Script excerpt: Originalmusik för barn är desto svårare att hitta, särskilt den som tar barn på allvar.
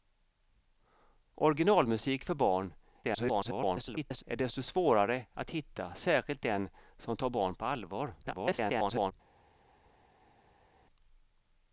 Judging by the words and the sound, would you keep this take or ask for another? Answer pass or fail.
fail